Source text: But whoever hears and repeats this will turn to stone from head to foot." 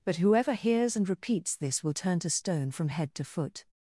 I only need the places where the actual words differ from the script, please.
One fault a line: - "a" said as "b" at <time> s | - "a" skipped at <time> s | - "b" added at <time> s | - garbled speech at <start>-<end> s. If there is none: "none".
none